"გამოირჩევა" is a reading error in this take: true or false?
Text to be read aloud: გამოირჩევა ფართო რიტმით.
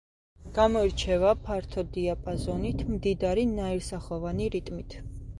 false